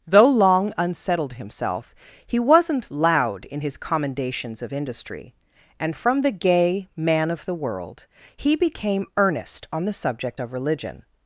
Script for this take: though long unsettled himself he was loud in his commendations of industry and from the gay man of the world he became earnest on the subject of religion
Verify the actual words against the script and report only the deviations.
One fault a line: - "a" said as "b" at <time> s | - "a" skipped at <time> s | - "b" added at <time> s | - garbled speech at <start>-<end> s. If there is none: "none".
- "was" said as "wasn't" at 2.4 s